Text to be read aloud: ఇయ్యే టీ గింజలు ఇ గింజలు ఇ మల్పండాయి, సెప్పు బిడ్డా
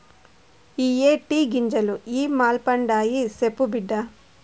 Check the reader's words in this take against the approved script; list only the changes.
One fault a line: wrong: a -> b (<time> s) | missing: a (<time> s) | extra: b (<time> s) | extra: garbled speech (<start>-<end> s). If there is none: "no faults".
missing: గింజలు ఇ (2.2 s)